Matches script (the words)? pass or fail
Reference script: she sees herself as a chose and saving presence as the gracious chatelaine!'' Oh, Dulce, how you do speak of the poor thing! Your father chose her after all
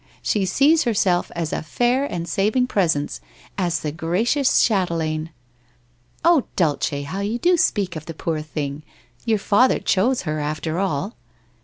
fail